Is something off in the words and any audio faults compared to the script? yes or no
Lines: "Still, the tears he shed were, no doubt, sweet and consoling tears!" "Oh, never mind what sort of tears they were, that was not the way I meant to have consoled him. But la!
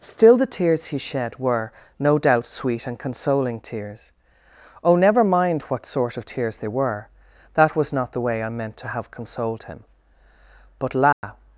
yes